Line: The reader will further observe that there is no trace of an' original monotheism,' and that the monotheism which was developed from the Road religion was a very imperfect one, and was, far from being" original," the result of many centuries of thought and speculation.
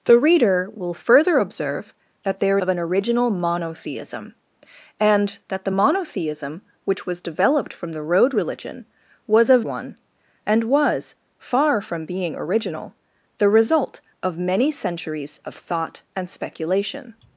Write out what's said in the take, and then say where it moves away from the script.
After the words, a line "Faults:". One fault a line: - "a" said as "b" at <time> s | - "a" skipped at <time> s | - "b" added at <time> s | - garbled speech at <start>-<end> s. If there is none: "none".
The reader will further observe that there of an' original monotheism,' and that the monotheism which was developed from the Road religion was a one, and was, far from being" original," the result of many centuries of thought and speculation.
Faults:
- "is no trace" skipped at 2.6 s
- "very imperfect" skipped at 9.6 s